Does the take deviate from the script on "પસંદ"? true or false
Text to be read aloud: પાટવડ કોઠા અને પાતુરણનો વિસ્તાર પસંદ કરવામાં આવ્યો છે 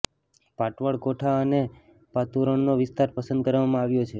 false